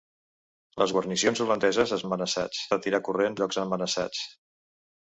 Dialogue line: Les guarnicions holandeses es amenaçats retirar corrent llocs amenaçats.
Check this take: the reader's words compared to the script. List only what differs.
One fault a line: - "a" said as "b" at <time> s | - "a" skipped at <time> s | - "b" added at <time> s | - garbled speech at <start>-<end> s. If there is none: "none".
none